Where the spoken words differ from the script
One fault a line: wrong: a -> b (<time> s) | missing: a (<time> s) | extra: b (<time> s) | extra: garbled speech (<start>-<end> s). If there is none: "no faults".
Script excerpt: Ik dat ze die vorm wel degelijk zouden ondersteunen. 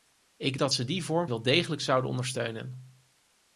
no faults